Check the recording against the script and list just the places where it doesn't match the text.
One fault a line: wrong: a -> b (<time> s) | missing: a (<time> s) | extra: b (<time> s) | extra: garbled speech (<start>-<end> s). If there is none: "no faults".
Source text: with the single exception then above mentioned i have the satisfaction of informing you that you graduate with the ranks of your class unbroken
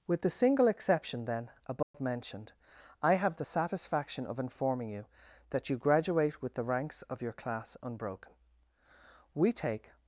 extra: we take (9.3 s)